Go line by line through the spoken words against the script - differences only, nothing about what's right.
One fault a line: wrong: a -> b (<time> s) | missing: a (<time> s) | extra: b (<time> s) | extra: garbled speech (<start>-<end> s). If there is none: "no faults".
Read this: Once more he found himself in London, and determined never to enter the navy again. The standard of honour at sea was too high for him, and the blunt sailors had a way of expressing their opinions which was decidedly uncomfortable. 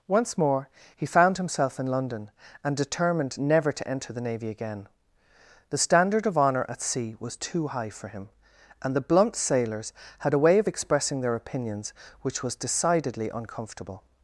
no faults